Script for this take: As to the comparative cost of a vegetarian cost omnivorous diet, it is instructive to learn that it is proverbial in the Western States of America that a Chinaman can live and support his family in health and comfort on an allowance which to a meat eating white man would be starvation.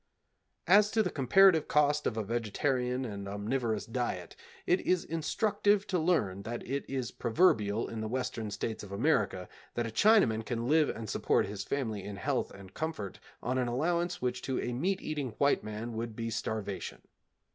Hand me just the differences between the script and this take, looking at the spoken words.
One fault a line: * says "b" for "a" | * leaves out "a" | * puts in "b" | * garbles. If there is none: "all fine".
* says "and" for "cost"